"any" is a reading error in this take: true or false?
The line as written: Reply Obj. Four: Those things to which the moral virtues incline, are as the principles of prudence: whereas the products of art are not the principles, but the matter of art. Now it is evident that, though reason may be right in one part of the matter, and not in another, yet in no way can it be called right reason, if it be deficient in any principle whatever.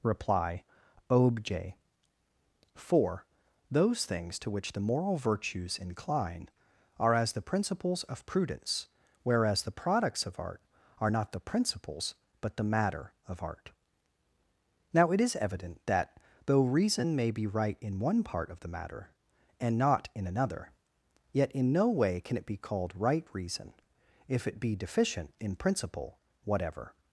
true